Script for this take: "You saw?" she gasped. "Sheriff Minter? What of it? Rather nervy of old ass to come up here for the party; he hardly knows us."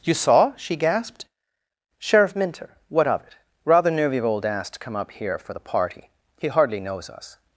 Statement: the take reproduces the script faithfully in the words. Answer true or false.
true